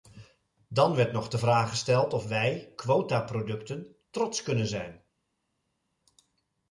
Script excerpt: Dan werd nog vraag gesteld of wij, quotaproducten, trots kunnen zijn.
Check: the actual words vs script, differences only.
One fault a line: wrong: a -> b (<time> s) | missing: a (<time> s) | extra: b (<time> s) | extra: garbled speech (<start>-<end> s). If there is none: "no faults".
extra: de (1.3 s)